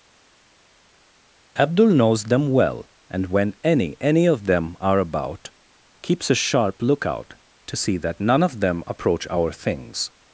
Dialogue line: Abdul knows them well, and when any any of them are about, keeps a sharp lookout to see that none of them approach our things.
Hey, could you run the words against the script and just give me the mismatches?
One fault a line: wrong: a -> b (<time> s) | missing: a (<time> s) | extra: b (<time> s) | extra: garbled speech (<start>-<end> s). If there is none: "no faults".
no faults